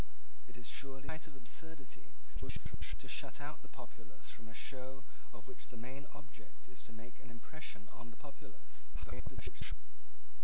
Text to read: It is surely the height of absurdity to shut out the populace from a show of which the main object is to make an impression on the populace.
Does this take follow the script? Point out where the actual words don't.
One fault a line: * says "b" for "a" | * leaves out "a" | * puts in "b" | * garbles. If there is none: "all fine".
* leaves out "the"
* garbles
* garbles